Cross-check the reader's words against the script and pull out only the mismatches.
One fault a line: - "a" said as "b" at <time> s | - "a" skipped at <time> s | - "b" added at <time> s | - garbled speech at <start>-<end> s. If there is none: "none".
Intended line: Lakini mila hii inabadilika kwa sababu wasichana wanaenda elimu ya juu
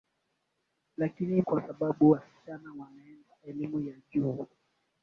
- "mila hii inabadilika" skipped at 1.4 s